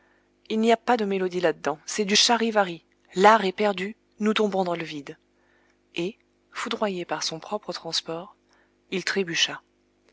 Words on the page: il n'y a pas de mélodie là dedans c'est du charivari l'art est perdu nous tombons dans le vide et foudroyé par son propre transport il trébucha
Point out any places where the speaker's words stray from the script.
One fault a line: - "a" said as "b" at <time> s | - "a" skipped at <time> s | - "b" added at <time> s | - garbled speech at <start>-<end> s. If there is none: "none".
none